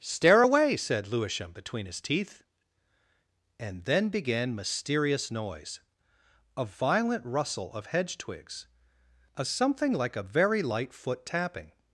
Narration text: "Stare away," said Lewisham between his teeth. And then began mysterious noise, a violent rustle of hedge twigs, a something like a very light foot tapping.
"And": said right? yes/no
yes